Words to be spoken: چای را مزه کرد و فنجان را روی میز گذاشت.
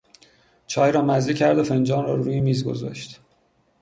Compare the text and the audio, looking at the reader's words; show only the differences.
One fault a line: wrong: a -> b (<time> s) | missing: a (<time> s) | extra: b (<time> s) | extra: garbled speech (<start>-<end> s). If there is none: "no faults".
no faults